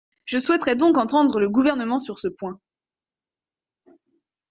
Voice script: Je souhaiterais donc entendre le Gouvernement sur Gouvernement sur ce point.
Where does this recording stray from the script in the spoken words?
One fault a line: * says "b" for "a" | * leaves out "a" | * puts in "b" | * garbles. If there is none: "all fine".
* leaves out "Gouvernement sur"